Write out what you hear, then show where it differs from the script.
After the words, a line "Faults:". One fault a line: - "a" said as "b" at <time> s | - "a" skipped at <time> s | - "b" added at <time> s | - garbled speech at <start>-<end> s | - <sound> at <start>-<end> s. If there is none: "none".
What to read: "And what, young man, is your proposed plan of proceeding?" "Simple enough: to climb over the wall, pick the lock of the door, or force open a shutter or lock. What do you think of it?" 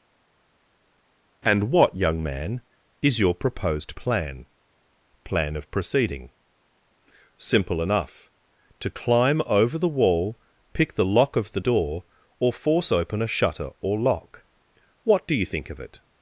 "And what, young man, is your proposed plan plan of proceeding?" "Simple enough: to climb over the wall, pick the lock of the door, or force open a shutter or lock. What do you think of it?"
Faults:
- "plan" added at 5.2 s